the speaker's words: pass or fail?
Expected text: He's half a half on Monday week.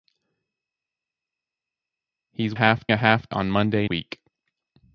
pass